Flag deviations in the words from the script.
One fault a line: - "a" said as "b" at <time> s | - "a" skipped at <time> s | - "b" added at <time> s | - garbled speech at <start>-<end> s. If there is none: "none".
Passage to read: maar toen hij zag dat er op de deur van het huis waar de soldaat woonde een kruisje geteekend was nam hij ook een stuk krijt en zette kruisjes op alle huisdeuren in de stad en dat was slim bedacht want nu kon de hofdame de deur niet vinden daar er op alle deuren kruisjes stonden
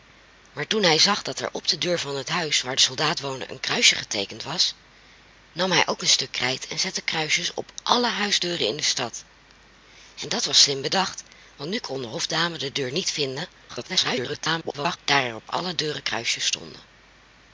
- garbled speech at 13.7-15.0 s